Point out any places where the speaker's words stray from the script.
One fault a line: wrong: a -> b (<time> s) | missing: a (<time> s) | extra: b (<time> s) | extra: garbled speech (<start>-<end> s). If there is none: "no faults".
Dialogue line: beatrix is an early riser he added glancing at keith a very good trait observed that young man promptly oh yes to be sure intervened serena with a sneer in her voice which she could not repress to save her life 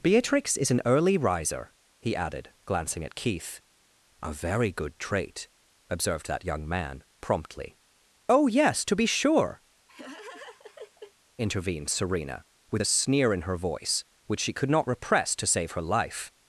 no faults